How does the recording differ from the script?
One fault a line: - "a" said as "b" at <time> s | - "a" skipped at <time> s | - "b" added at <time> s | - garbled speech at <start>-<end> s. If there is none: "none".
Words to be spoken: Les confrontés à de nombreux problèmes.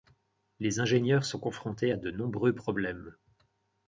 - "ingénieurs sont" added at 0.8 s